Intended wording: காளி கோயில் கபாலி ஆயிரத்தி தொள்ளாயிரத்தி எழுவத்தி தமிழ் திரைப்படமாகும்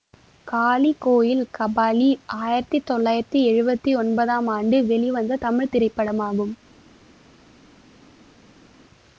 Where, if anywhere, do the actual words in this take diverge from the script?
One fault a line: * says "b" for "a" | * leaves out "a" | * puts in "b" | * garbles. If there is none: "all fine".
* puts in "ஒன்பதாம் ஆண்டு வெளிவந்த"